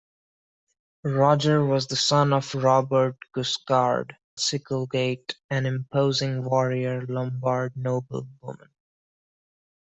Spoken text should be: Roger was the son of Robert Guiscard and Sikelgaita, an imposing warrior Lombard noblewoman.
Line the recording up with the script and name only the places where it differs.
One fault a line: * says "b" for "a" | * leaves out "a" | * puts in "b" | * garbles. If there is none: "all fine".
* leaves out "and"